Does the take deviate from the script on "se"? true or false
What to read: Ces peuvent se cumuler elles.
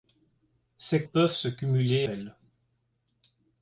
false